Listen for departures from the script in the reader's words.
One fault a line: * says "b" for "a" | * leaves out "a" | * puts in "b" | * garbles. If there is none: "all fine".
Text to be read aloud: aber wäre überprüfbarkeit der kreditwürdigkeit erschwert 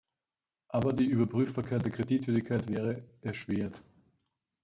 * says "die" for "wäre"
* puts in "wäre"